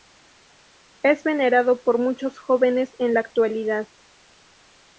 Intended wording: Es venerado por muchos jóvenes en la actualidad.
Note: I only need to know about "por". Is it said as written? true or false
true